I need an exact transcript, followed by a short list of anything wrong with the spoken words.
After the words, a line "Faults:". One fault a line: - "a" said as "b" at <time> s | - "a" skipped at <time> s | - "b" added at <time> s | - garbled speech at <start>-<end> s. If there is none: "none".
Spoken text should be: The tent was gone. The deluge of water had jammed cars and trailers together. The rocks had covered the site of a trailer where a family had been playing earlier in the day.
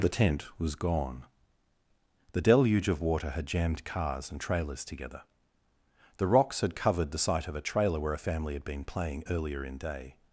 The tent was gone. The deluge of water had jammed cars and trailers together. The rocks had covered the site of a trailer where a family had been playing earlier in day.
Faults:
- "the" skipped at 9.8 s